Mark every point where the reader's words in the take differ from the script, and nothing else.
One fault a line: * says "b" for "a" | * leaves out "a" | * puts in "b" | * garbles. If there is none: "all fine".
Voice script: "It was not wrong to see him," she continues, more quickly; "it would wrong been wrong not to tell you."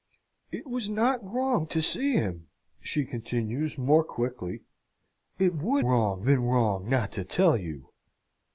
all fine